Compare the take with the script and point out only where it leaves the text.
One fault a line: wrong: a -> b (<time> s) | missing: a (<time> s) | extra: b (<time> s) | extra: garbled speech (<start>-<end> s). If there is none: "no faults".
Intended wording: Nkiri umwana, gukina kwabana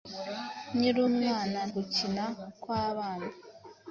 no faults